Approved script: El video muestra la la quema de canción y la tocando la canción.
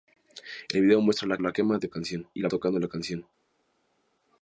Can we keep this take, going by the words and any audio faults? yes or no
yes